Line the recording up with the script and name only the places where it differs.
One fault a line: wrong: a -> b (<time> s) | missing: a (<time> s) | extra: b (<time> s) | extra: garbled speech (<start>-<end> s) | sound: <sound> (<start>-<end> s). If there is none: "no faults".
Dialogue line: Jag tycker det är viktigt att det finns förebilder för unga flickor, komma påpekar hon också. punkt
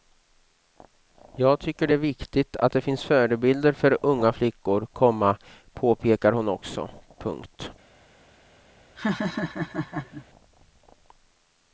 sound: laugh (9.0-10.3 s)